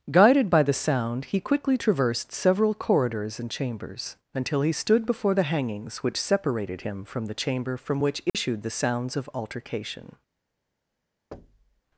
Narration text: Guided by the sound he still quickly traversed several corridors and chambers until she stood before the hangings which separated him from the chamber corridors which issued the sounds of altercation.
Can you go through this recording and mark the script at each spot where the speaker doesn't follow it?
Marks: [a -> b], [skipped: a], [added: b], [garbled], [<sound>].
Guided by the sound he [skipped: still] quickly traversed several corridors and chambers until [she -> he] stood before the hangings which separated him from the chamber [corridors -> from] which issued [dropout] the sounds of altercation. [thud]